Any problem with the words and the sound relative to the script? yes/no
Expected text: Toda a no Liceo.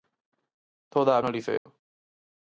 yes